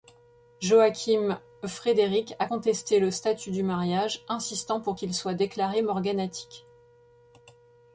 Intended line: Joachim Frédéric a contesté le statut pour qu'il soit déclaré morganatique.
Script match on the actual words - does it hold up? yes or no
no